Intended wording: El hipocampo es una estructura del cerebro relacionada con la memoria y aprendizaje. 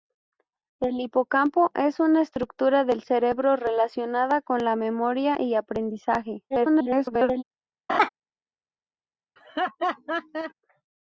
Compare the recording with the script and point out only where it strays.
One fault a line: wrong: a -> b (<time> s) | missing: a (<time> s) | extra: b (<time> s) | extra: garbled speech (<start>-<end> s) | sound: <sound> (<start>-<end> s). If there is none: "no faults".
extra: garbled speech (6.5-7.4 s)
sound: laugh (7.9-8.1 s)
sound: laugh (9.4-10.5 s)